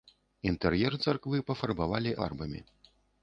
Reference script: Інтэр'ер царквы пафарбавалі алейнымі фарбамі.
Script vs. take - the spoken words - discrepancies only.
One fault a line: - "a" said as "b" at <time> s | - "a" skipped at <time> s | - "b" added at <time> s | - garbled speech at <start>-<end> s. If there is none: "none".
- "алейнымі" skipped at 2.1 s